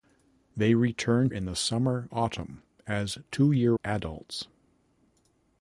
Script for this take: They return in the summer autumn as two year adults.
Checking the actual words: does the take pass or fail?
pass